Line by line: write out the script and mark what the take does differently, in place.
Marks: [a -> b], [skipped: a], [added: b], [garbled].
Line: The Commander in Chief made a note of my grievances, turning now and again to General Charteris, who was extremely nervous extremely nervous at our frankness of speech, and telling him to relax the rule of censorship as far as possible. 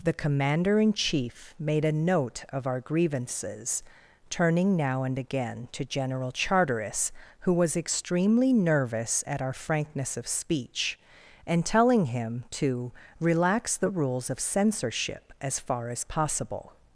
The Commander in Chief made a note of [my -> our] grievances, turning now and again to General Charteris, who was extremely nervous [skipped: extremely nervous] at our frankness of speech, and telling him to relax the [rule -> rules] of censorship as far as possible.